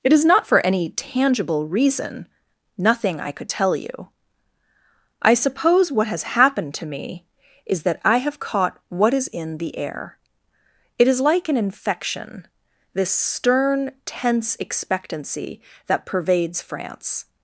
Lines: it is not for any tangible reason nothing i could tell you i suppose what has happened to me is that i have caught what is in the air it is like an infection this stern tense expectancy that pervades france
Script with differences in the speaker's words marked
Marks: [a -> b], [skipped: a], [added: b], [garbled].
it is not for any tangible reason nothing i could tell you i suppose what has happened to me is that i have caught what is in the air it is like an infection this stern tense expectancy that pervades france